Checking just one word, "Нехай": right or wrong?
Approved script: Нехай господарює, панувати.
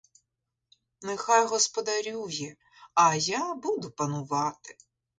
right